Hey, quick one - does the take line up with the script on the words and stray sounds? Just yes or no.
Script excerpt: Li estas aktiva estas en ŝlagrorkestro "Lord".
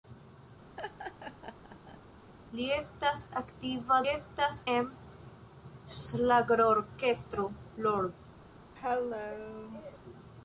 no